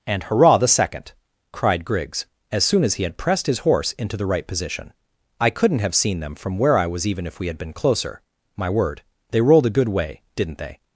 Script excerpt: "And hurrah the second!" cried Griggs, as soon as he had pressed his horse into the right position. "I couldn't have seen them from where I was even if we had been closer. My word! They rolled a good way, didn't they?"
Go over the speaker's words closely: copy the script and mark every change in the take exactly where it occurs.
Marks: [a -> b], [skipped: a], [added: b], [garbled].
"And hurrah the second!" cried Griggs, as soon as he had pressed his horse into the right position. "I couldn't have seen them from where I was even if we had been closer. My word! They rolled a good way, didn't they?"